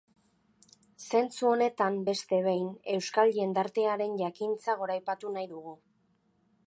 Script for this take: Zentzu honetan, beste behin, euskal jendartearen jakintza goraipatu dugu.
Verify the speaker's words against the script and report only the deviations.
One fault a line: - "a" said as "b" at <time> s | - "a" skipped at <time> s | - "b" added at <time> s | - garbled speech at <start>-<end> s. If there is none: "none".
- "nahi" added at 5.4 s